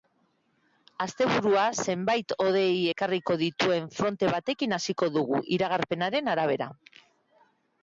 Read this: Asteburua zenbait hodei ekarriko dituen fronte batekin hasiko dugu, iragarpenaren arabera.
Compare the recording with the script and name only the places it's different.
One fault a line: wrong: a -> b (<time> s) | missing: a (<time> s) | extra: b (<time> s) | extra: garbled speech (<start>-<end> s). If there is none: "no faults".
no faults